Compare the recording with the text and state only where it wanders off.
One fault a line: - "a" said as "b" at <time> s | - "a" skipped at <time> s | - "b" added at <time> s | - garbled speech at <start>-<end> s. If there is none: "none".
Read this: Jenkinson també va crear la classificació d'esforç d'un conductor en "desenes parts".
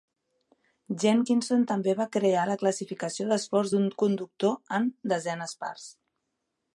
none